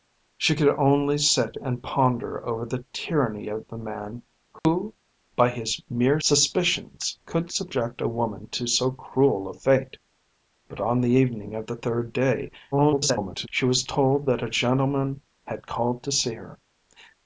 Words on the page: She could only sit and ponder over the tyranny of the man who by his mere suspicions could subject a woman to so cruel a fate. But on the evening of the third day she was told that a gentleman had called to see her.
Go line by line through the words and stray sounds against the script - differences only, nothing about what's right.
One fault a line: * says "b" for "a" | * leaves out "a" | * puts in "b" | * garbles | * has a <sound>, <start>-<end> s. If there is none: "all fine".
* has a dropout, 4.6-4.7 s
* garbles